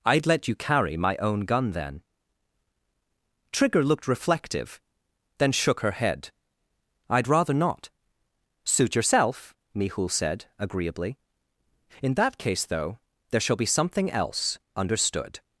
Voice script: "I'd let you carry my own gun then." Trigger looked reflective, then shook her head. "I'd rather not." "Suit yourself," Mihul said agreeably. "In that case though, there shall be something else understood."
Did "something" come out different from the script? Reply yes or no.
no